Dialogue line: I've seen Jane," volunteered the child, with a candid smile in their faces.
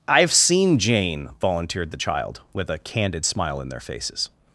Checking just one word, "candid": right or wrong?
right